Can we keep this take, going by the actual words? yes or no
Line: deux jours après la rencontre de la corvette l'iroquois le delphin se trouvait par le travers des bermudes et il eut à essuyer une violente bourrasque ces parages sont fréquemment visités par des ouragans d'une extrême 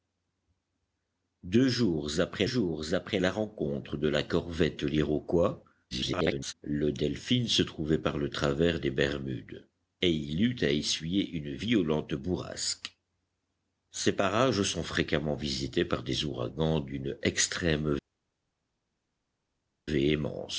no